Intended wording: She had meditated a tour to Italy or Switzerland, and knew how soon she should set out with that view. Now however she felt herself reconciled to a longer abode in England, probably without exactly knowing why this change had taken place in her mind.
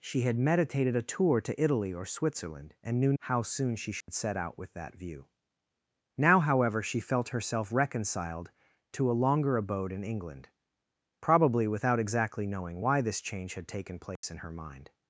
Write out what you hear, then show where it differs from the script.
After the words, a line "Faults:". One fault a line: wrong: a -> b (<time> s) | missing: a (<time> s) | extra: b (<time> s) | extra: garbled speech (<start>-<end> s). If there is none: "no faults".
She had meditated a tour to Italy or Switzerland, and knew how soon she should set out with that view. Now however she felt herself reconciled to a longer abode in England, probably without exactly knowing why this change had taken place in her mind.
Faults:
no faults